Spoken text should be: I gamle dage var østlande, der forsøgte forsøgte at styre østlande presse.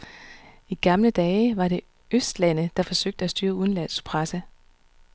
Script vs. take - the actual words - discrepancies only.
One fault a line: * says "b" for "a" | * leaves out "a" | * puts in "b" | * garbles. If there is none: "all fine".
* puts in "det"
* leaves out "forsøgte"
* says "udenlandsk" for "østlande"